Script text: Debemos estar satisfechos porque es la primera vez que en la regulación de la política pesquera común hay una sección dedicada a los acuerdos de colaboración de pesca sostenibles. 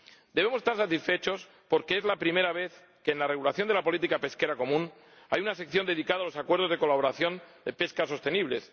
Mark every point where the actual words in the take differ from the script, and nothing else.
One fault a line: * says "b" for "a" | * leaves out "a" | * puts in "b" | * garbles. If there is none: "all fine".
all fine